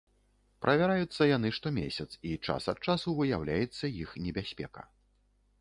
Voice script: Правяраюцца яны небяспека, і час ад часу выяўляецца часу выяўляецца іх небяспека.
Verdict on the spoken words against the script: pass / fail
fail